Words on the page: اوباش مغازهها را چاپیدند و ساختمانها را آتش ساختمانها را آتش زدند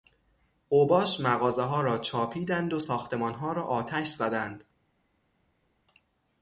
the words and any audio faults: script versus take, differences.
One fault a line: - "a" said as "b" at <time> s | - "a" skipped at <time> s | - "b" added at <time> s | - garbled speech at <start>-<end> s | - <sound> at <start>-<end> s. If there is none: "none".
- "ساختمانها را آتش" skipped at 4.1 s